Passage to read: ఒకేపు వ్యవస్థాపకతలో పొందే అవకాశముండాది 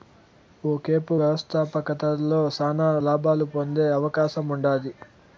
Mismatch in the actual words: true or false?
true